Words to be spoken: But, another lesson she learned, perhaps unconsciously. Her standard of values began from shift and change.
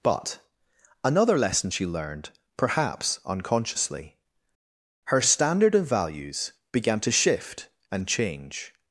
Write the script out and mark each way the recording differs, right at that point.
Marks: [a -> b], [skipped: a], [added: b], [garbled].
But, another lesson she learned, perhaps unconsciously. Her standard of values began [from -> to] shift and change.